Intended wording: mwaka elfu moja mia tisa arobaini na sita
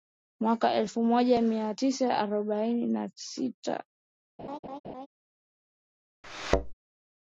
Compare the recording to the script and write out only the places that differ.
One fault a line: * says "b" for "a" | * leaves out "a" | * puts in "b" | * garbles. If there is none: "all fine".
all fine